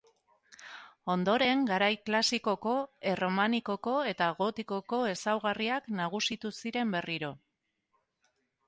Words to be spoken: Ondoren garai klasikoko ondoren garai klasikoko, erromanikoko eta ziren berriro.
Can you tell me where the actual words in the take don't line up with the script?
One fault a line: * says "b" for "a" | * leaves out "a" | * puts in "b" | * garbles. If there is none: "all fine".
* says "erromanikoko eta gotikoko ezaugarriak nagusitu" for "ondoren garai klasikoko erromanikoko eta"